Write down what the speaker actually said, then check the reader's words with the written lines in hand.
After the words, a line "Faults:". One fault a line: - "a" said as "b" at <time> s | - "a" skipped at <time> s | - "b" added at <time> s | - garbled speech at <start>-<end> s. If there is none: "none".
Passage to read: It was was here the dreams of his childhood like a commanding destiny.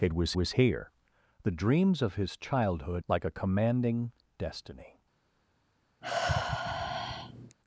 It was was here the dreams of his childhood like a commanding destiny.
Faults:
none